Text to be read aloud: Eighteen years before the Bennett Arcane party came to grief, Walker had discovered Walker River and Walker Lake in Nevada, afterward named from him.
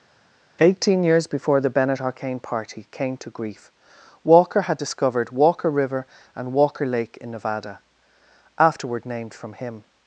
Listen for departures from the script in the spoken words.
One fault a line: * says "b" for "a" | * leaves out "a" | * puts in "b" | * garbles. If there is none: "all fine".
all fine